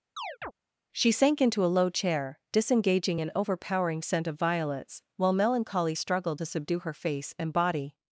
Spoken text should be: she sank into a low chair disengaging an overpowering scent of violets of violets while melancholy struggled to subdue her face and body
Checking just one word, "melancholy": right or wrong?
right